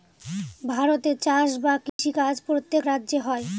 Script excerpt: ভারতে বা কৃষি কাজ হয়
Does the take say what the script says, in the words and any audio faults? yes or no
no